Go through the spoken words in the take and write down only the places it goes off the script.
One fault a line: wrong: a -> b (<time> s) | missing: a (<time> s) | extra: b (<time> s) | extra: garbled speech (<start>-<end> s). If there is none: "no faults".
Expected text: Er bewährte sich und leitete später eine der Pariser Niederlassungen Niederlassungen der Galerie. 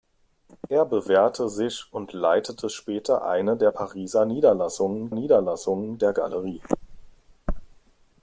no faults